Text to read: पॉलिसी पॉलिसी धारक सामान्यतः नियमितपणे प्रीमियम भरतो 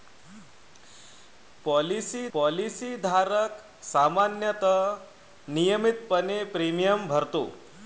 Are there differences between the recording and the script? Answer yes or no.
no